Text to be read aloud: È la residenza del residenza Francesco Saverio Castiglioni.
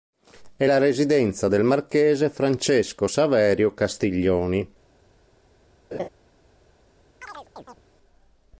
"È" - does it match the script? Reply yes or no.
yes